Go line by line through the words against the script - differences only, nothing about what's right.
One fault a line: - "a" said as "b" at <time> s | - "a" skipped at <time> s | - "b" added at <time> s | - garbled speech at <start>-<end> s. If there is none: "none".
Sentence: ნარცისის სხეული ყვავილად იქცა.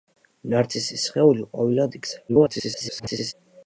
- garbled speech at 2.3-3.3 s